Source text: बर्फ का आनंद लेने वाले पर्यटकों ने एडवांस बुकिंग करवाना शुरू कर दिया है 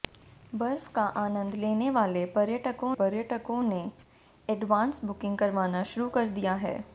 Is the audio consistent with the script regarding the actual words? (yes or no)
no